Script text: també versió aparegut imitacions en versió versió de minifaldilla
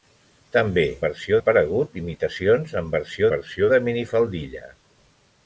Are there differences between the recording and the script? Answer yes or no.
no